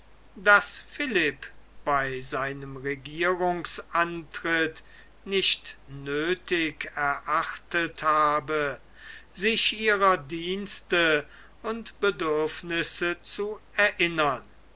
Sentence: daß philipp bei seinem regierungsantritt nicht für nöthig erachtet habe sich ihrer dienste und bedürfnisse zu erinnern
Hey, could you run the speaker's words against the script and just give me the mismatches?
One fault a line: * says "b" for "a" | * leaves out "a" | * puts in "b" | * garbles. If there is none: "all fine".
* leaves out "für"